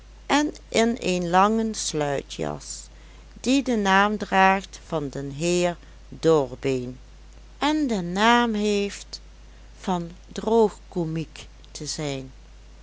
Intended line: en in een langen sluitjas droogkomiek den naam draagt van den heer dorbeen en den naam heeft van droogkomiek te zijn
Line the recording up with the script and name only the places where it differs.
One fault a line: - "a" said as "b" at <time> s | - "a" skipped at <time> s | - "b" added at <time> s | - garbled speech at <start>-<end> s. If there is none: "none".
- "droogkomiek" said as "die" at 3.4 s